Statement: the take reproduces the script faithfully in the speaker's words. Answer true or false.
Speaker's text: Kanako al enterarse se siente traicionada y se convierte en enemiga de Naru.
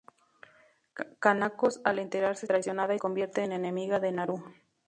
false